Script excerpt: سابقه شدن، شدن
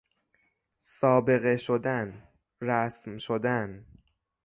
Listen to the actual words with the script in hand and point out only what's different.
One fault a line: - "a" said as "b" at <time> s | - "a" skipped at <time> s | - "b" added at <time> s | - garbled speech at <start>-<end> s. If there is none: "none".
- "رسم" added at 2.6 s